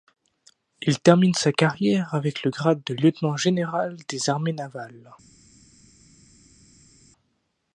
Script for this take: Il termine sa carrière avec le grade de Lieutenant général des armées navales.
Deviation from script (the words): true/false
false